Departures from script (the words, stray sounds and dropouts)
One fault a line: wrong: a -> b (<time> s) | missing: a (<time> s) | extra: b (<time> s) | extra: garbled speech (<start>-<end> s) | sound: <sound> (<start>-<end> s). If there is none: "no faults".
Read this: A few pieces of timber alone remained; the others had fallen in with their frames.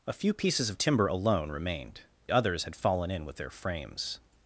missing: the (2.0 s)